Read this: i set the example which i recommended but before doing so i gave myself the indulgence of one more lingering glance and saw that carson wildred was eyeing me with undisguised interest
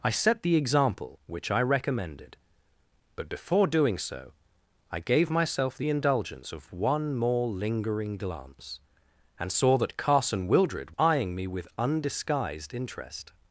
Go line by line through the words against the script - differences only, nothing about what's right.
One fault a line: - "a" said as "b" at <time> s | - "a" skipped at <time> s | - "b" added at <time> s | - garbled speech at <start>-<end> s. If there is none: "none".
- "was" skipped at 10.9 s